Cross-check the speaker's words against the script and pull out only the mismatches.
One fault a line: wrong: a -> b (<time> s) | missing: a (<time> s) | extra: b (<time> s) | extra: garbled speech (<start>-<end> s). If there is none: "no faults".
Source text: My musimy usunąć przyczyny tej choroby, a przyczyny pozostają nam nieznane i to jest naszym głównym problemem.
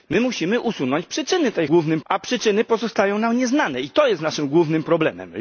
wrong: choroby -> głównym (1.7 s)